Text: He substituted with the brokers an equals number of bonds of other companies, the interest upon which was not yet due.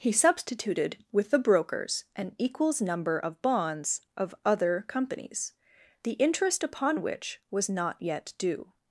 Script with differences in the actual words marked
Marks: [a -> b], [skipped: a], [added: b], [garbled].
He substituted with the brokers an equals number of bonds of other companies, the interest upon which was not yet due.